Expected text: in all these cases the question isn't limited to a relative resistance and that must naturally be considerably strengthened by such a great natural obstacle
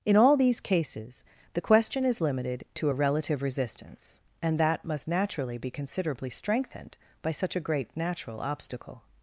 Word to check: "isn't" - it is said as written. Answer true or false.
false